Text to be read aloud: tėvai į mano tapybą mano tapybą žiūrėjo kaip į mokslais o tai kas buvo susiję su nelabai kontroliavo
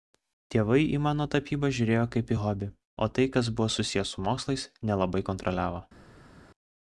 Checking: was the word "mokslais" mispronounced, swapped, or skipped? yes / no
yes